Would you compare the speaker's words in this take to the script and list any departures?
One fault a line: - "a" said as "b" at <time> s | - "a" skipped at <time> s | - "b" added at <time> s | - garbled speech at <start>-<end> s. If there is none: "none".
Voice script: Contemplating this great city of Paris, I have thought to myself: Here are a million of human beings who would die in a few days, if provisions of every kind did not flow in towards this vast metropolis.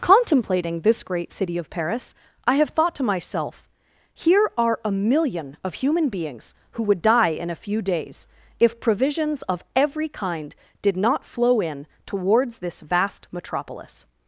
none